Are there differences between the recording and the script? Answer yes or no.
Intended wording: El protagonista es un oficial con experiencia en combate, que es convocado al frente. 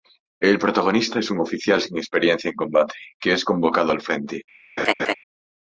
yes